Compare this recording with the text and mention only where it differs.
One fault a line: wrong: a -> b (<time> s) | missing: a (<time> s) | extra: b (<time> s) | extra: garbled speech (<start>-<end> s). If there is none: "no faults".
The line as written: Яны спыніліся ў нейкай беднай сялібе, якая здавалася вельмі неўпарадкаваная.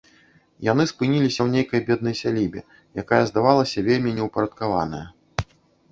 no faults